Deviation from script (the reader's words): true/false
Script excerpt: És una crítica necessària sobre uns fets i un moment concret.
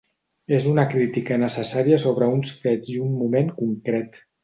false